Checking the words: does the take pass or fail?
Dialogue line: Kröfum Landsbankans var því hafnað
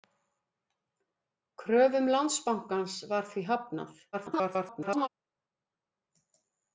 fail